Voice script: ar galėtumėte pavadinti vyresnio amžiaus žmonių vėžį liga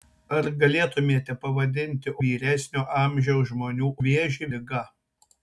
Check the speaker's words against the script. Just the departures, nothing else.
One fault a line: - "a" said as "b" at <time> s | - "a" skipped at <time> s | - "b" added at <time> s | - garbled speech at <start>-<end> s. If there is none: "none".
none